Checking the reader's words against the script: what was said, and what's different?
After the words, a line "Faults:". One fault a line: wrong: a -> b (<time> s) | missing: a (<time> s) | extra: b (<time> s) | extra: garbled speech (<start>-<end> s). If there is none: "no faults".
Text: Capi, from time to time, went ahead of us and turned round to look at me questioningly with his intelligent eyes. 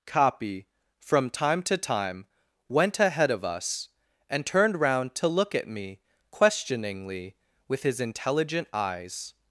Capi, from time to time, went ahead of us and turned round to look at me questioningly with his intelligent eyes.
Faults:
no faults